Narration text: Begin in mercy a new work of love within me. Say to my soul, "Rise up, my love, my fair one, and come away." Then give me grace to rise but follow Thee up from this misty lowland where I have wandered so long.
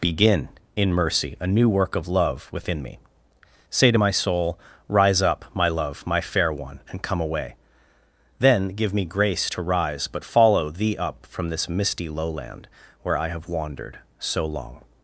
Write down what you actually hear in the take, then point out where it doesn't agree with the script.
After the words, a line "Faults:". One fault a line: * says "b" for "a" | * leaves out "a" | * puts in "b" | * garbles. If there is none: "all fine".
Begin in mercy a new work of love within me. Say to my soul, "Rise up, my love, my fair one, and come away." Then give me grace to rise but follow Thee up from this misty lowland where I have wandered so long.
Faults:
all fine